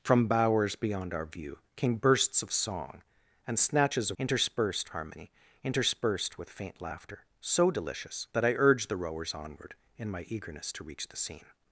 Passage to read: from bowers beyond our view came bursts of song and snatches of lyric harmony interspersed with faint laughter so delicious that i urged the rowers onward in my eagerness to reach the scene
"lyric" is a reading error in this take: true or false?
true